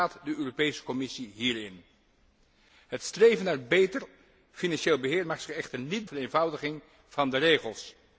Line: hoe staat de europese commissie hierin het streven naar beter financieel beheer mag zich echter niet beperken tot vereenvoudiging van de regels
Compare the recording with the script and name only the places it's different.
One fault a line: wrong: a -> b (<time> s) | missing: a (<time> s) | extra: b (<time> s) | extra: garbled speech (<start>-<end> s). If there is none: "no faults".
missing: beperken tot (6.1 s)